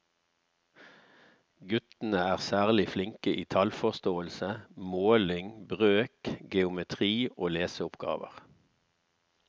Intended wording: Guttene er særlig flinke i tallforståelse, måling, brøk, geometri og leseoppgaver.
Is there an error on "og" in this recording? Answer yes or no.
no